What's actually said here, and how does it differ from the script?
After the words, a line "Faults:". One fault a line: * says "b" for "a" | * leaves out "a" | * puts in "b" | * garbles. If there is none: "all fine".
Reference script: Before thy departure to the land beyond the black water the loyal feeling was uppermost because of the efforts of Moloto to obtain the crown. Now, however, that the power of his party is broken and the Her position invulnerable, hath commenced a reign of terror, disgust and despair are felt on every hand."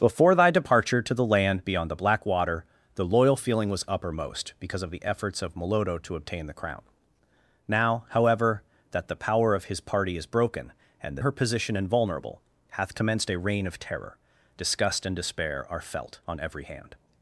Before thy departure to the land beyond the black water the loyal feeling was uppermost because of the efforts of Moloto to obtain the crown. Now, however, that the power of his party is broken and the Her position invulnerable, hath commenced a reign of terror, disgust and despair are felt on every hand."
Faults:
all fine